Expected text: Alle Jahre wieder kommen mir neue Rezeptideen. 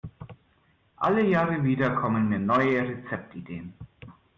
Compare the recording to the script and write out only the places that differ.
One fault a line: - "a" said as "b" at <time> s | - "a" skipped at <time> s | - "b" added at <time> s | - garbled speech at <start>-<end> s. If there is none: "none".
none